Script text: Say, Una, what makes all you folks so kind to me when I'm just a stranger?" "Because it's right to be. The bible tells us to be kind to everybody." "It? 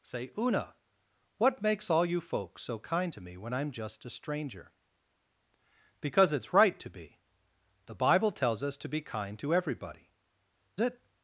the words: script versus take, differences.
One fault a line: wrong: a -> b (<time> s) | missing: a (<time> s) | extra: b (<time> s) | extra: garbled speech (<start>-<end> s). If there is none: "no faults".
no faults